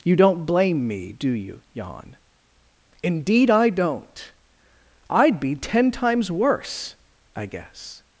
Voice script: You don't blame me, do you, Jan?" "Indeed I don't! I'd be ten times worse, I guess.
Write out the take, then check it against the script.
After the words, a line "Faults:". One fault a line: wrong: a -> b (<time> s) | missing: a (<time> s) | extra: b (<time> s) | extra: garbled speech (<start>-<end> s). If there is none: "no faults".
You don't blame me, do you, Jan?" "Indeed I don't! I'd be ten times worse, I guess.
Faults:
no faults